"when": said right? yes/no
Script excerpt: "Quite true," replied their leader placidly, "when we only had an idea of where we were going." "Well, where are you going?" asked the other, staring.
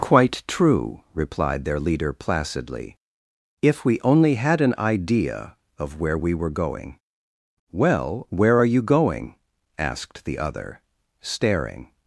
no